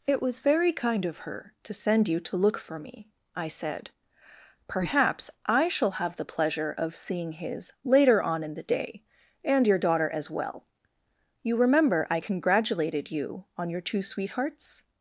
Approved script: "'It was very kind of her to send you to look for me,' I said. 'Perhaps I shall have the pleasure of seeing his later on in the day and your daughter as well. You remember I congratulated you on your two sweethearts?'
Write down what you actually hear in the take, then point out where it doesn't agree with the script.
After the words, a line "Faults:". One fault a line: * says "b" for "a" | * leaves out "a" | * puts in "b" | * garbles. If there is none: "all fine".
"'It was very kind of her to send you to look for me,' I said. 'Perhaps I shall have the pleasure of seeing his later on in the day and your daughter as well. You remember I congratulated you on your two sweethearts?'
Faults:
all fine